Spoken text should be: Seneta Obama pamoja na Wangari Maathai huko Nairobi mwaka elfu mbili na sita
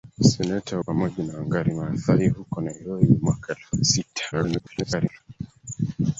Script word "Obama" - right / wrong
wrong